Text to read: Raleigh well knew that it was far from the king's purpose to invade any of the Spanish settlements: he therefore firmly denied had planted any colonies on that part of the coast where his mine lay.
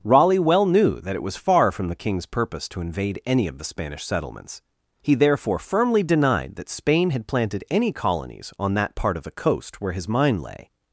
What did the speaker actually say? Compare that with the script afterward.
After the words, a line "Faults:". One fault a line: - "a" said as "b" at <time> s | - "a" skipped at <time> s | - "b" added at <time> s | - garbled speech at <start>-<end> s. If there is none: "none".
Raleigh well knew that it was far from the king's purpose to invade any of the Spanish settlements: he therefore firmly denied that Spain had planted any colonies on that part of the coast where his mine lay.
Faults:
- "that Spain" added at 6.5 s